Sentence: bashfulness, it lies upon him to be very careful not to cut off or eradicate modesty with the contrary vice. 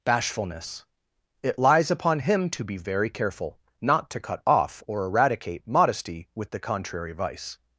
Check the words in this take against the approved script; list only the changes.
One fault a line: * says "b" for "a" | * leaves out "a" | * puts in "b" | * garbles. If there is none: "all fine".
all fine